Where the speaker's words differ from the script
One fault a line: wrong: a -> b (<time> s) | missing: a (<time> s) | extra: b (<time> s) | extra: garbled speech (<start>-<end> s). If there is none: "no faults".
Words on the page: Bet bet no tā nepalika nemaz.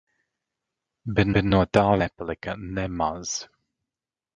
no faults